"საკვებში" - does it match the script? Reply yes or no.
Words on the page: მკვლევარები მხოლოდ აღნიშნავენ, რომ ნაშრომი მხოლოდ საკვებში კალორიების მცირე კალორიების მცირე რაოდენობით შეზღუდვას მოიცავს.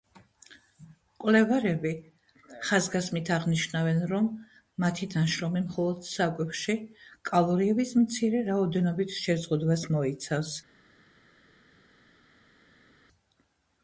yes